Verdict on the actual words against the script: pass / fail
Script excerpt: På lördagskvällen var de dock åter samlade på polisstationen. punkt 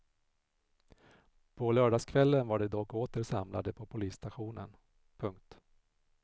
pass